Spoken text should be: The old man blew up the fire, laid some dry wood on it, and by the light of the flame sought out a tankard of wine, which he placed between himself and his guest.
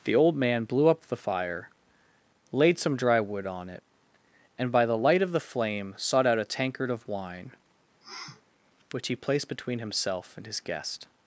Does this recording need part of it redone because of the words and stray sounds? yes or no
yes